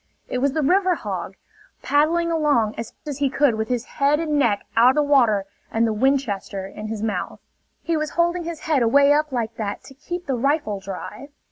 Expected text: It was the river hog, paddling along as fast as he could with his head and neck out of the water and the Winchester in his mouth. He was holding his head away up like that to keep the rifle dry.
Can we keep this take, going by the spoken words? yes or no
no